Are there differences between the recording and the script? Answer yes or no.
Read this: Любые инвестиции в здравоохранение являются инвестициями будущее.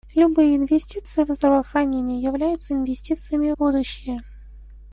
no